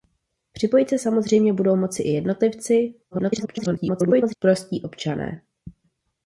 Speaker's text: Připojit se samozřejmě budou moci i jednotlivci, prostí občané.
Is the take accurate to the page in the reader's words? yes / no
no